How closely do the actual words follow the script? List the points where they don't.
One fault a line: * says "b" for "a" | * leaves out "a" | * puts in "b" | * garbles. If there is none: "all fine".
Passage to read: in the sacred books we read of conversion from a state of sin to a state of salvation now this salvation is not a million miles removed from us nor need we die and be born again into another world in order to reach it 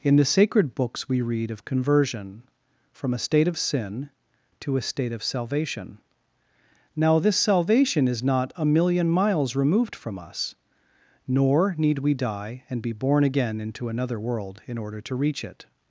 all fine